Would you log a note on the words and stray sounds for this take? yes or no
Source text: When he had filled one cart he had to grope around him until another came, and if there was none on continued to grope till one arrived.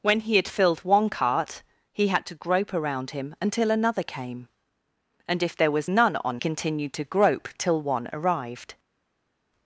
no